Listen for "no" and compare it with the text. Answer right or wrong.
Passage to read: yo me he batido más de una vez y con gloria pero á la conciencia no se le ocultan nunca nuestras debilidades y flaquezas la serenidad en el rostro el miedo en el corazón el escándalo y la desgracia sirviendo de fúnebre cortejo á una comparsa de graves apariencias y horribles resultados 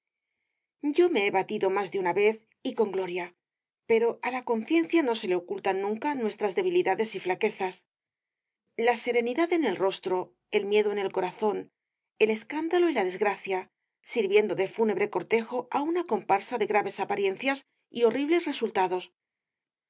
right